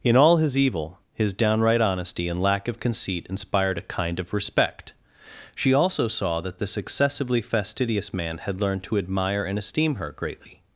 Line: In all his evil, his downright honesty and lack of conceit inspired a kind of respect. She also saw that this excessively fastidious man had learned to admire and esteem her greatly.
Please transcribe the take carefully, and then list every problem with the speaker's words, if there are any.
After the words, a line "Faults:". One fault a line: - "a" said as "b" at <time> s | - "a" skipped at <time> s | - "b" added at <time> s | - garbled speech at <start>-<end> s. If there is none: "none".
In all his evil, his downright honesty and lack of conceit inspired a kind of respect. She also saw that this excessively fastidious man had learned to admire and esteem her greatly.
Faults:
none